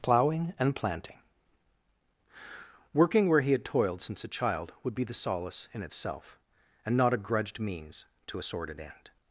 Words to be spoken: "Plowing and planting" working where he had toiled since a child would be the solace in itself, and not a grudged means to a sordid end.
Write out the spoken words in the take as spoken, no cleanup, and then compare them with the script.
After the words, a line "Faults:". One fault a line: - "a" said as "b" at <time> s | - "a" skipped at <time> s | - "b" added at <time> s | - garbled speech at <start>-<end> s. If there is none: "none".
"Plowing and planting" working where he had toiled since a child would be the solace in itself, and not a grudged means to a sordid end.
Faults:
none